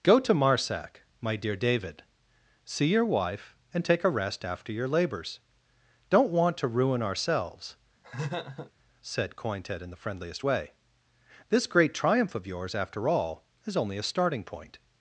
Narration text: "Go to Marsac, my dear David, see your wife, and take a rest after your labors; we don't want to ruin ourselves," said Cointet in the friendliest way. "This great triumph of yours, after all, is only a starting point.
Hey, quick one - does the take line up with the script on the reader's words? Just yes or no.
no